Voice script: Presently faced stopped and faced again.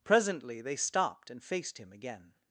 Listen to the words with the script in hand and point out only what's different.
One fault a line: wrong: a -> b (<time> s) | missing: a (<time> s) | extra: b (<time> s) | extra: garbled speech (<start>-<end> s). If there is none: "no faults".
wrong: faced -> they (0.6 s)
extra: him (1.8 s)